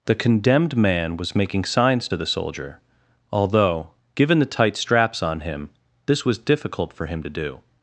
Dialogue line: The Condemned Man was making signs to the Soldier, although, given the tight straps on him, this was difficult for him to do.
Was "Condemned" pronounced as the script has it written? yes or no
yes